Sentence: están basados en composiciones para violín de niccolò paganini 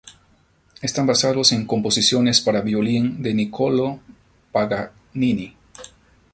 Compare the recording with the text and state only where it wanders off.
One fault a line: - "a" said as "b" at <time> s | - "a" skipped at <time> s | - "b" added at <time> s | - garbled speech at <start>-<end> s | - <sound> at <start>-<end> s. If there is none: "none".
none